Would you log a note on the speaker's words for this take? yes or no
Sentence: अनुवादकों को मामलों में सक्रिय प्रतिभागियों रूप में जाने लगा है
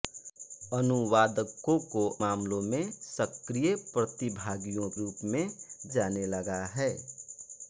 no